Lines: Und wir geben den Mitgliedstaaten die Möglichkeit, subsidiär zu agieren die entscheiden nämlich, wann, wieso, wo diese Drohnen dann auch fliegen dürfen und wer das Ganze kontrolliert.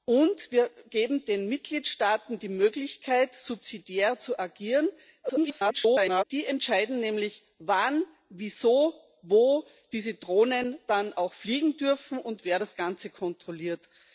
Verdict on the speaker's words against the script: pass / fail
fail